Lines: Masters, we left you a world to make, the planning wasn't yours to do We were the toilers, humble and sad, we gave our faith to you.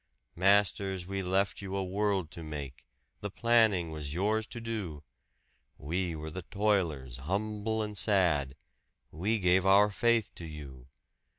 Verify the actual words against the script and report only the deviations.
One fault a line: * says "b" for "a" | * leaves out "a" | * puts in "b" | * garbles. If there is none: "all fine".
* says "was" for "wasn't"